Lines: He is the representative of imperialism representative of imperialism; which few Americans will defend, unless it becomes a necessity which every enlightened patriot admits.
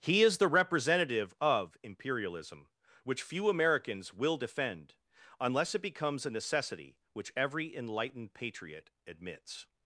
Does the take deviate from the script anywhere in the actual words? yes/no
yes